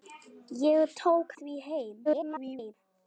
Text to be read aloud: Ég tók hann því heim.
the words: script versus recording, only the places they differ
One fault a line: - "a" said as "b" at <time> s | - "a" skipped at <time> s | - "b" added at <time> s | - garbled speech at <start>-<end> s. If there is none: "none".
- "hann" skipped at 1.3 s
- garbled speech at 2.0-2.7 s